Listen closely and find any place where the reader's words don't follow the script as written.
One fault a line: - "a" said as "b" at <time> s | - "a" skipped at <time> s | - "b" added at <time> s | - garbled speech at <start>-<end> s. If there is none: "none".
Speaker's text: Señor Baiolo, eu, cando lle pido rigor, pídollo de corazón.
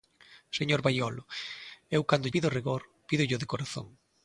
- "lle" skipped at 2.3 s